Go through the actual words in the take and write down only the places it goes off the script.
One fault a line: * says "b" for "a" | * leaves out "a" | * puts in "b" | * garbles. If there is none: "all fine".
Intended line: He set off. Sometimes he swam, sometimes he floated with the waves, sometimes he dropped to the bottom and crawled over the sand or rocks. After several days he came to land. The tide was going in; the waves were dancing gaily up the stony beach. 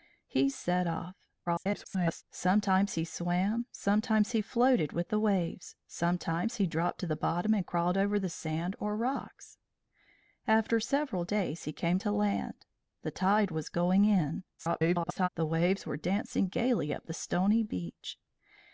* garbles
* garbles